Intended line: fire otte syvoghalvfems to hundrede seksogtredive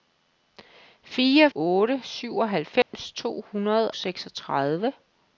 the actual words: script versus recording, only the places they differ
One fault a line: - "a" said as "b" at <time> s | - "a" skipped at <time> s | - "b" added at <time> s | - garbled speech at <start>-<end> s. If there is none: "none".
none